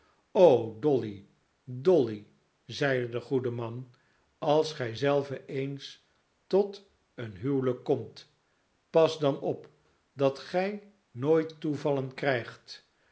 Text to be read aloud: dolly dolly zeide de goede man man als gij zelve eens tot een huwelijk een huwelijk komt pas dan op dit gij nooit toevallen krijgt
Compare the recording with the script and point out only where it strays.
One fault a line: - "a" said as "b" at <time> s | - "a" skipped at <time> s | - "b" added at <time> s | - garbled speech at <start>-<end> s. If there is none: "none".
- "man" skipped at 3.9 s
- "een huwelijk" skipped at 7.8 s
- "dit" said as "dat" at 10.1 s